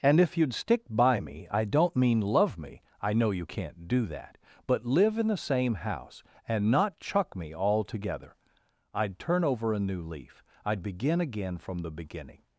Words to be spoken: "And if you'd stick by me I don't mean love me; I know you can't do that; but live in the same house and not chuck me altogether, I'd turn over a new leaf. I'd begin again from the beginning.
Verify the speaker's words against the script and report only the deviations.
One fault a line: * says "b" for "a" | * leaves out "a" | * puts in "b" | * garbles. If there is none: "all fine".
all fine